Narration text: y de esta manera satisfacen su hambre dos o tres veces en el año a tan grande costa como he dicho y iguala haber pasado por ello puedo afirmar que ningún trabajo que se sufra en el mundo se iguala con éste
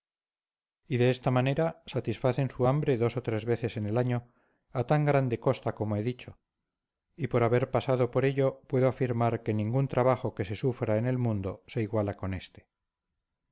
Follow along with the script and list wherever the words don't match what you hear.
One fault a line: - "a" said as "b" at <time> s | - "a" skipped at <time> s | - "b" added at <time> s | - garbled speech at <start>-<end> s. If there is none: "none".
- "iguala" said as "por" at 7.3 s